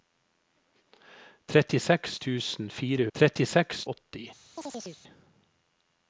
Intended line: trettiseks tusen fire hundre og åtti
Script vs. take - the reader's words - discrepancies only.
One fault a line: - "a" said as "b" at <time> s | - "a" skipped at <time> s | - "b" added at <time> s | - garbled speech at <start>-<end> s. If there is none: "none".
- "hundre" said as "trettiseks" at 3.2 s